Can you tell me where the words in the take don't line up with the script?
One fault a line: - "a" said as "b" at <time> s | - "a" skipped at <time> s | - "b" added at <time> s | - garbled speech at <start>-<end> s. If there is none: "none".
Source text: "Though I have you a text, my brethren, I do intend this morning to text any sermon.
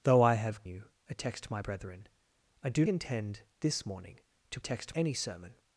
none